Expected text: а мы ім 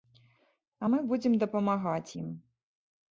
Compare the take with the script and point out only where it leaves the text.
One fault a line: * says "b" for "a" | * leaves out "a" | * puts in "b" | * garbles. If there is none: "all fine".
* puts in "будзем дапамагаць"